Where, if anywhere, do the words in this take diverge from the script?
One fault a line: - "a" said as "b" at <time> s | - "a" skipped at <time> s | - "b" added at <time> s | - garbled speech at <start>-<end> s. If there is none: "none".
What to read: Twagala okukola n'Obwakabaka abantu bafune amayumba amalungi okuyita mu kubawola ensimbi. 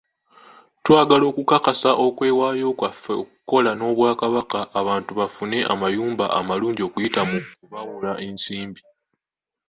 - "okukakasa okwewaayo kwaffe" added at 1.3 s